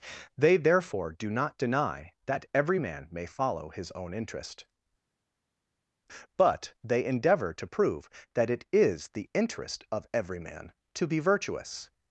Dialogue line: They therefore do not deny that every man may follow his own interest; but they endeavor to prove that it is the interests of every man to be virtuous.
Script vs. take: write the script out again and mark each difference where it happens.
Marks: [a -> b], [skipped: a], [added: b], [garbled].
They therefore do not deny that every man may follow his own interest; but they endeavor to prove that it is the [interests -> interest] of every man to be virtuous.